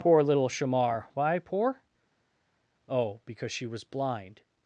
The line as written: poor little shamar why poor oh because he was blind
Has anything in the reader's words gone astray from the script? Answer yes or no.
yes